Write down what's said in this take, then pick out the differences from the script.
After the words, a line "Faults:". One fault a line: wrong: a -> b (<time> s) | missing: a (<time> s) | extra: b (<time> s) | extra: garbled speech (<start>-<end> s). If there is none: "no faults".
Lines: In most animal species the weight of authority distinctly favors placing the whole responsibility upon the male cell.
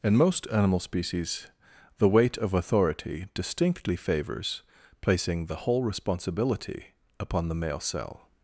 In most animal species the weight of authority distinctly favors placing the whole responsibility upon the male cell.
Faults:
no faults